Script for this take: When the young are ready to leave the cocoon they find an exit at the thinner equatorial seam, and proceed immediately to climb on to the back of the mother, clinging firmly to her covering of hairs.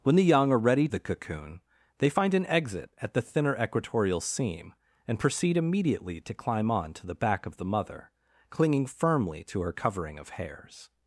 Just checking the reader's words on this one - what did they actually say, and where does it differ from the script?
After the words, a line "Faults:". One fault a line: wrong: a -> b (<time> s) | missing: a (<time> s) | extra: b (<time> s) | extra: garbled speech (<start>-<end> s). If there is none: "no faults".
When the young are ready the cocoon they find an exit at the thinner equatorial seam, and proceed immediately to climb on to the back of the mother, clinging firmly to her covering of hairs.
Faults:
missing: to leave (0.9 s)